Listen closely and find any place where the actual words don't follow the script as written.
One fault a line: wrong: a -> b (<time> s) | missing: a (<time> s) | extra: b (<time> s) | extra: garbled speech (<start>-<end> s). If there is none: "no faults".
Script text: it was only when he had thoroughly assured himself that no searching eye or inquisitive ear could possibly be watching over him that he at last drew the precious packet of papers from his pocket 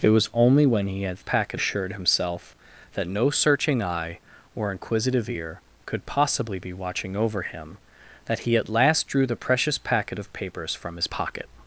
wrong: thoroughly -> packet (1.2 s)